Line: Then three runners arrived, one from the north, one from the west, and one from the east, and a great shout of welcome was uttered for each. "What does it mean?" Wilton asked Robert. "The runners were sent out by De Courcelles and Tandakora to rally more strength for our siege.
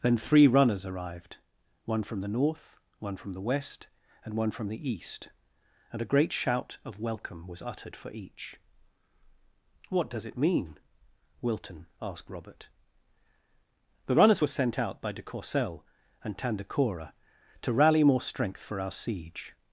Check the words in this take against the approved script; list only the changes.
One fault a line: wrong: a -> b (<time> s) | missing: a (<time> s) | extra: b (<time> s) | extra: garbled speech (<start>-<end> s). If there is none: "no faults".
no faults